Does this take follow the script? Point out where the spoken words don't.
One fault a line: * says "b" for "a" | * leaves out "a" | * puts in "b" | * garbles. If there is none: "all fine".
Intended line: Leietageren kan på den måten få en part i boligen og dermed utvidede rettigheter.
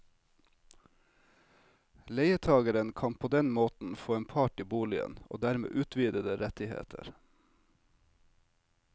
all fine